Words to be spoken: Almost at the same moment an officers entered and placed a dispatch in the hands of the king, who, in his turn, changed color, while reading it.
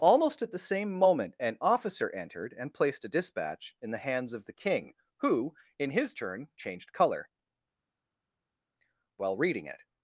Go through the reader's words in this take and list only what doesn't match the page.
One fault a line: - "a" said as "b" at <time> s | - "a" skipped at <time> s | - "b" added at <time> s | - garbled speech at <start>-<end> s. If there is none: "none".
- "officers" said as "officer" at 1.6 s